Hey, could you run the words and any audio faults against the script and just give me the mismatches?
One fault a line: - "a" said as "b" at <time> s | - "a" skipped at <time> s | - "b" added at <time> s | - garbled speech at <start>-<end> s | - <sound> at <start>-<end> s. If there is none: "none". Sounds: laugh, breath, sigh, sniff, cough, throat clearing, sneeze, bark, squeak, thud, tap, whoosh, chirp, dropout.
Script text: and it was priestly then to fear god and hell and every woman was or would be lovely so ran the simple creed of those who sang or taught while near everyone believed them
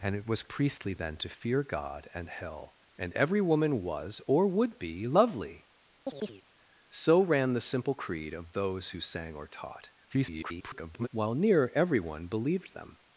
- chirp at 6.1-6.4 s
- garbled speech at 10.1-11.1 s